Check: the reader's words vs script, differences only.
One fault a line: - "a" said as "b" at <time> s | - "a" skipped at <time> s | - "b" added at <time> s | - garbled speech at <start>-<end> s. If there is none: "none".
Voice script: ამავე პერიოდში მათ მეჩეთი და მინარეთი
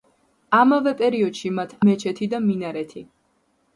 none